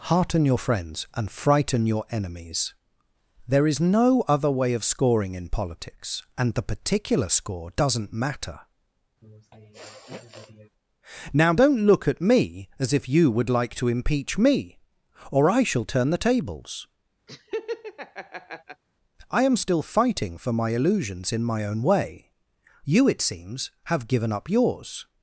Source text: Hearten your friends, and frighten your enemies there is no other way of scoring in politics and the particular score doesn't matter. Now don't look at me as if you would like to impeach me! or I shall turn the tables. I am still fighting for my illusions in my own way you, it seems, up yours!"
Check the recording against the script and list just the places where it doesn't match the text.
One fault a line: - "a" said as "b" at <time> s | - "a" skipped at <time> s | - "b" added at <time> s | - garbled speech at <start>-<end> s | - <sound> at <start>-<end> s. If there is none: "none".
- sniff at 9.2-10.7 s
- laugh at 17.3-18.8 s
- "have given" added at 23.8 s